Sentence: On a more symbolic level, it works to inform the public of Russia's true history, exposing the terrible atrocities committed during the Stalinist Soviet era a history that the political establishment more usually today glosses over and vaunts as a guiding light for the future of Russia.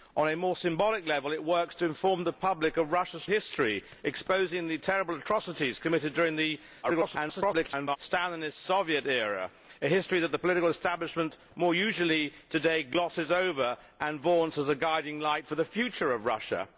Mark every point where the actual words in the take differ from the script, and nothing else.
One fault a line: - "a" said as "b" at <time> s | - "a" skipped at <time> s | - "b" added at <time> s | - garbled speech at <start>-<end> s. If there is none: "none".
- "true" skipped at 3.2 s
- garbled speech at 6.8-8.0 s